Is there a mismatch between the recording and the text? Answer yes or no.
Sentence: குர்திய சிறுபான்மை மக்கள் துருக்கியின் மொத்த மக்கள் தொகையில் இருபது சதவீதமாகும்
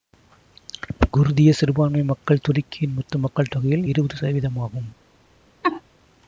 no